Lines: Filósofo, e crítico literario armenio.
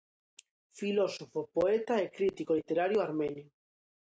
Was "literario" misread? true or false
false